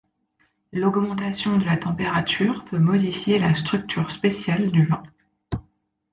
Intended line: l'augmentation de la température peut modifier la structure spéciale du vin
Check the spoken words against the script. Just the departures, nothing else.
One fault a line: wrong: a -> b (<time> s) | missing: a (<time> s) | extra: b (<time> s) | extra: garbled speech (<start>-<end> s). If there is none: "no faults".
no faults